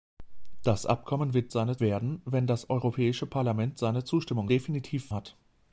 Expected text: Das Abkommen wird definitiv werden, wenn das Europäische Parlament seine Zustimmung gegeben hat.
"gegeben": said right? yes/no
no